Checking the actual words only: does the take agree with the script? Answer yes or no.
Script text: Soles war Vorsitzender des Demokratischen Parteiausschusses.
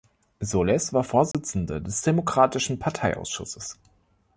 yes